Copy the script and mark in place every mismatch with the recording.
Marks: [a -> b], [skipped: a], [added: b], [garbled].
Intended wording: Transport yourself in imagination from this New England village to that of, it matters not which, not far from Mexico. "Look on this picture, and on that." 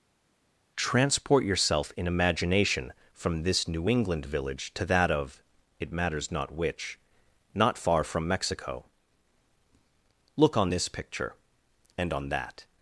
Transport yourself in imagination from this New England village to that of, it matters not which, not far from Mexico. "Look on this picture, and on that."